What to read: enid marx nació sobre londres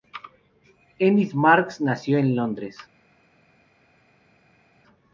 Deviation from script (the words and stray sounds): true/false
true